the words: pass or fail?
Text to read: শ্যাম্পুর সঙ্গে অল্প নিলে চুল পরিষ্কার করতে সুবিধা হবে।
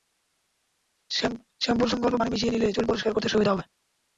fail